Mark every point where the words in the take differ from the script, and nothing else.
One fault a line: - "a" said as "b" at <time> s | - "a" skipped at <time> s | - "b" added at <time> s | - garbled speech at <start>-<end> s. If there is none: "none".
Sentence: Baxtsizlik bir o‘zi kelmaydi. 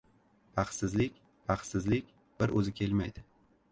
- "baxtsizlik" added at 1.5 s